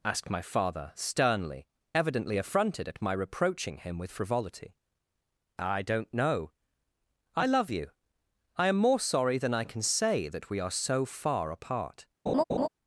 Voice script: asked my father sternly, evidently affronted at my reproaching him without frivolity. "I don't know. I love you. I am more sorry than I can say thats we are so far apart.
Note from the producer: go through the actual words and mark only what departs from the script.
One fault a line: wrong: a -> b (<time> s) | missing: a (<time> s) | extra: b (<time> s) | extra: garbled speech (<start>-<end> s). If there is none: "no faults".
wrong: without -> with (4.0 s)
wrong: thats -> that (10.3 s)